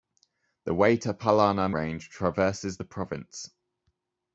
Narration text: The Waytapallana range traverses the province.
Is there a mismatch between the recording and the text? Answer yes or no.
no